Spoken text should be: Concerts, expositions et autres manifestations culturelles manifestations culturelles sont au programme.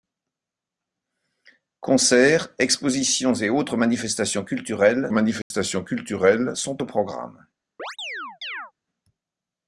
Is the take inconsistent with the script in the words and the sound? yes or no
yes